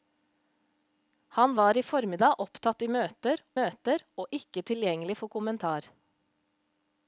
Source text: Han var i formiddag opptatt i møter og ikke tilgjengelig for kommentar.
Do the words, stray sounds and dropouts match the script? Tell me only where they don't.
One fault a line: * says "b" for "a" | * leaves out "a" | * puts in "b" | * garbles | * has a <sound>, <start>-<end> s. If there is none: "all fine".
* puts in "møter"